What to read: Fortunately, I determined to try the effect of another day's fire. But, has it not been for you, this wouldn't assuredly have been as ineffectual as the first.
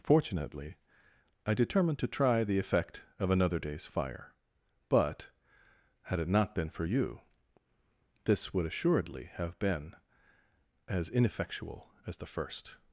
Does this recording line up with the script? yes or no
no